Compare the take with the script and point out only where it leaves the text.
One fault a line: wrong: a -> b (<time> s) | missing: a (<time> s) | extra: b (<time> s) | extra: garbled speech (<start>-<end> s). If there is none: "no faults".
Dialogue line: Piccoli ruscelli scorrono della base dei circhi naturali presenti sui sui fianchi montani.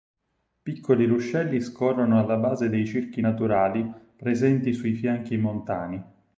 wrong: della -> alla (2.2 s)
missing: sui (4.9 s)